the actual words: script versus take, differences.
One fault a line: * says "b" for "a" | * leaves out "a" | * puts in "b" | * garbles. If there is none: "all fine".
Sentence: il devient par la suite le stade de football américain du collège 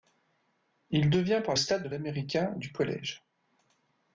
* leaves out "la suite le"
* leaves out "football"